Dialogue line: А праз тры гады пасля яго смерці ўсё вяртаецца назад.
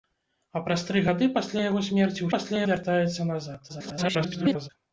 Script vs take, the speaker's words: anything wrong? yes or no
yes